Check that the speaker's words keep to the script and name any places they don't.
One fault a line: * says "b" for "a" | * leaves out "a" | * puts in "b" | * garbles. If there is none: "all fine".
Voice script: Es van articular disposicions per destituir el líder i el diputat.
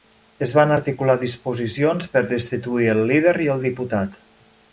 all fine